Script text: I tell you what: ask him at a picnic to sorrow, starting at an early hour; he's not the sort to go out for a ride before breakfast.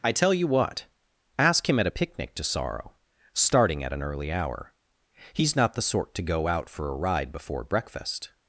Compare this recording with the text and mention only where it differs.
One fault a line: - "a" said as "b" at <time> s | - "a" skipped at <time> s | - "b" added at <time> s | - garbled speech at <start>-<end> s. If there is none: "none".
none